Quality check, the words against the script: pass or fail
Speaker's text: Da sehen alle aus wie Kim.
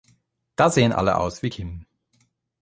pass